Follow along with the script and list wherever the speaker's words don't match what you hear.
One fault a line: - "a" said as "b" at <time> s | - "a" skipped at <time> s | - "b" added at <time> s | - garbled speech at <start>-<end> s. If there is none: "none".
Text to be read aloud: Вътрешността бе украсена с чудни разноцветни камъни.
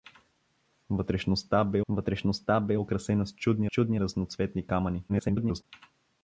- "вътрешността бе" added at 1.9 s
- "чудни" added at 3.7 s
- garbled speech at 5.1-5.6 s